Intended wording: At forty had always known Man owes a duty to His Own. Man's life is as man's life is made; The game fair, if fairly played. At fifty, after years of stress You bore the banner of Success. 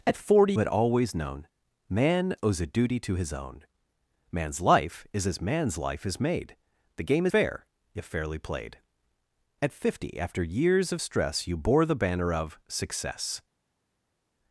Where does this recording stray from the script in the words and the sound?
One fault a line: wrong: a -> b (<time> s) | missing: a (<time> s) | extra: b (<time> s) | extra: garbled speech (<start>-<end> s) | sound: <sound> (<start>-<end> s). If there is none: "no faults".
no faults